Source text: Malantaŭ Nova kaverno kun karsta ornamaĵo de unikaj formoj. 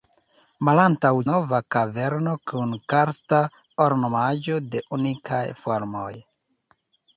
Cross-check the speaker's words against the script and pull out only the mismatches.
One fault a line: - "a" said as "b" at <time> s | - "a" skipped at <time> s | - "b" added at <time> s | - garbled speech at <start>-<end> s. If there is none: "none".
none